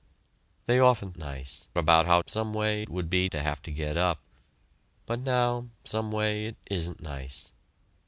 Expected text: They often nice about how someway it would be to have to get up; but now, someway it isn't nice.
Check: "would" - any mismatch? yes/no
no